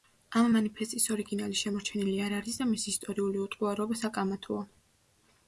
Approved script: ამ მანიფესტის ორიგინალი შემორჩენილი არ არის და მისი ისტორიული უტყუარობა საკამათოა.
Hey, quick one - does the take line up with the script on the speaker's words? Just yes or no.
yes